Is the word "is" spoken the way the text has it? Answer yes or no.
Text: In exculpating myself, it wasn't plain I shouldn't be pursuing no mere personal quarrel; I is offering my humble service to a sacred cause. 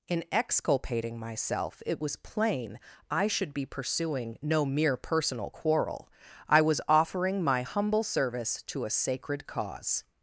no